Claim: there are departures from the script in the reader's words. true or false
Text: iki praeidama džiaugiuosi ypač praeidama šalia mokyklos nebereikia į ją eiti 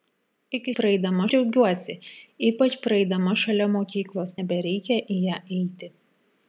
false